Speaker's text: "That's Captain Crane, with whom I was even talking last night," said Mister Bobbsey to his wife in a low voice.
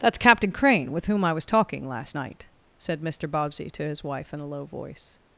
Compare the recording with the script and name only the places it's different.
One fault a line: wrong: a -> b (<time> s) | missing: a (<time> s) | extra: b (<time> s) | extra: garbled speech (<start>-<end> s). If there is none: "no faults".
missing: even (1.4 s)